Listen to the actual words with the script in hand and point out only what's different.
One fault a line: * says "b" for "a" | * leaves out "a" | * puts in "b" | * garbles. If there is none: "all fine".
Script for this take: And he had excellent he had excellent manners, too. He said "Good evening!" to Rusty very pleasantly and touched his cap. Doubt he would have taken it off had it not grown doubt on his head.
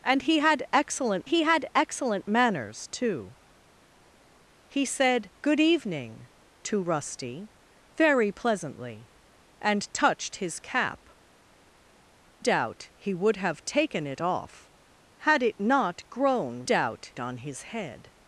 all fine